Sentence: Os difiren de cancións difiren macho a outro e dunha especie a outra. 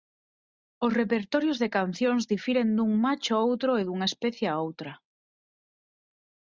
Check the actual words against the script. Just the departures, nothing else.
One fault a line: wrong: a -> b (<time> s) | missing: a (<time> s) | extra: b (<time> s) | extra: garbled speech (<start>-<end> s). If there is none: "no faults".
wrong: difiren -> repertorios (1.0 s)
extra: dun (2.8 s)